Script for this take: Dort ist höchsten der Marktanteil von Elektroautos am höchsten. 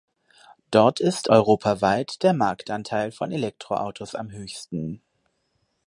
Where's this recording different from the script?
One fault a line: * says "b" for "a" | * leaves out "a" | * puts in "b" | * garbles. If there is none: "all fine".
* says "europaweit" for "höchsten"